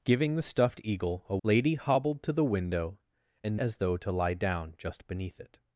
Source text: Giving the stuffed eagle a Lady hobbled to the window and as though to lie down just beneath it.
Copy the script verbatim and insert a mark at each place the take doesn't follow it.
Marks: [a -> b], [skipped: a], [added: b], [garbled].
Giving the stuffed eagle a Lady hobbled to the window and as though to lie down just beneath it.